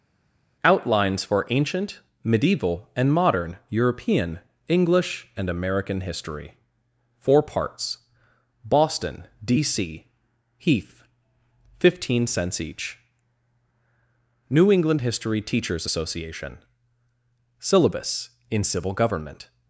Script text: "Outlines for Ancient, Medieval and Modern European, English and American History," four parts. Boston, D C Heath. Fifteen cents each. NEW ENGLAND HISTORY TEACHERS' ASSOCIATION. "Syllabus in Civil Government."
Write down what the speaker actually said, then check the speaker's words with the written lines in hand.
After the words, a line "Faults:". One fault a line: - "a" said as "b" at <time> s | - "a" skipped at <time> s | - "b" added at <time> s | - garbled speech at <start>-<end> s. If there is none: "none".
"Outlines for Ancient, Medieval and Modern European, English and American History," four parts. Boston, D C Heath. Fifteen cents each. NEW ENGLAND HISTORY TEACHERS' ASSOCIATION. "Syllabus in Civil Government."
Faults:
none